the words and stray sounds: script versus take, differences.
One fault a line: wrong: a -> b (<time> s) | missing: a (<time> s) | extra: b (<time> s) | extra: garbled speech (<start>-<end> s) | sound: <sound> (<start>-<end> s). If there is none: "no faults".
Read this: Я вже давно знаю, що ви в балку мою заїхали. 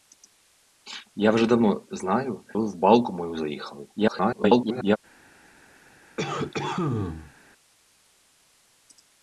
missing: що (2.5 s)
extra: garbled speech (4.0-5.0 s)
sound: cough (6.2-7.3 s)